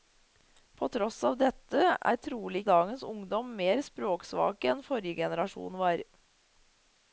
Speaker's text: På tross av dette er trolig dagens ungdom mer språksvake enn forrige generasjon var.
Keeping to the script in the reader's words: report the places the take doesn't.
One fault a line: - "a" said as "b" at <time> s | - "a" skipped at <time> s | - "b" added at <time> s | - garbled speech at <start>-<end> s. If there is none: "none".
none